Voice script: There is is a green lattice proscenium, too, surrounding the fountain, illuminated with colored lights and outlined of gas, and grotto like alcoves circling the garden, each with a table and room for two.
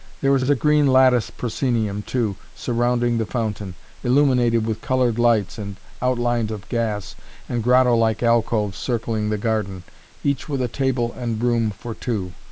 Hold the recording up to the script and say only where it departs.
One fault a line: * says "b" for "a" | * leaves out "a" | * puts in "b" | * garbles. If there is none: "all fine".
all fine